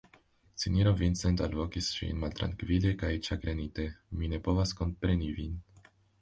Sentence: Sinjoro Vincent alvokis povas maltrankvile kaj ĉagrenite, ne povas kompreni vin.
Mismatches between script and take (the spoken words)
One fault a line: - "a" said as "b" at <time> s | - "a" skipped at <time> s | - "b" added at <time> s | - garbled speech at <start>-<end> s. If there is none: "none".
- "povas" said as "ŝin" at 2.0 s
- "mi" added at 4.2 s